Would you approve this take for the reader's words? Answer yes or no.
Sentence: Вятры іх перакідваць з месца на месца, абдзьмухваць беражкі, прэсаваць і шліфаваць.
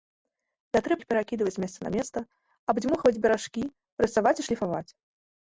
yes